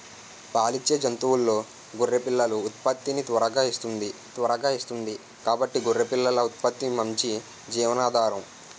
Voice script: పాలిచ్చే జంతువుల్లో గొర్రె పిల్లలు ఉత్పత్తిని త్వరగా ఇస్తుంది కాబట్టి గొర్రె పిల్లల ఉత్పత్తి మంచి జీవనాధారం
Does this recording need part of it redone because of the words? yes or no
yes